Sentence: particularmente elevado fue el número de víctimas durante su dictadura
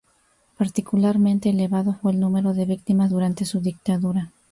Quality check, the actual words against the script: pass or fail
pass